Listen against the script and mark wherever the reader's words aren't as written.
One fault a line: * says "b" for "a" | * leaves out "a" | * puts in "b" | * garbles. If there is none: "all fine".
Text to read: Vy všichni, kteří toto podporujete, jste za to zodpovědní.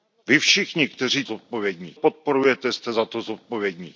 * says "zodpovědní" for "toto"